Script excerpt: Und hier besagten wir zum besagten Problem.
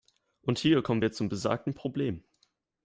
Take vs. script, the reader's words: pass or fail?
fail